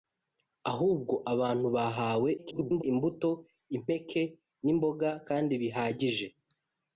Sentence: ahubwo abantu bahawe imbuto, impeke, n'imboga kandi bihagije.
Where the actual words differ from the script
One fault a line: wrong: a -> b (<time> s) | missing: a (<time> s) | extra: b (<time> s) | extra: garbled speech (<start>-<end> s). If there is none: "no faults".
extra: garbled speech (2.4-2.8 s)